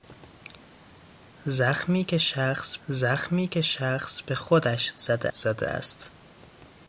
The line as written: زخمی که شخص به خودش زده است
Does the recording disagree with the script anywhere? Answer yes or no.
yes